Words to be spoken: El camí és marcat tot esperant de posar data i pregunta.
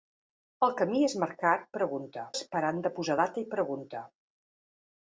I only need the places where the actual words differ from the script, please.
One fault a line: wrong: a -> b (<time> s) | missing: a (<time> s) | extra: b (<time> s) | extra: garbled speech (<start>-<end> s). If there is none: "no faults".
wrong: tot -> pregunta (1.8 s)